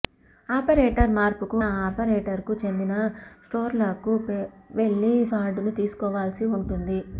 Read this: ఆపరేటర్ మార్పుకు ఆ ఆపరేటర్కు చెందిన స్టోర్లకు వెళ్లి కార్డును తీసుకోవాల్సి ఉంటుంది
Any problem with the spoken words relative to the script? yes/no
no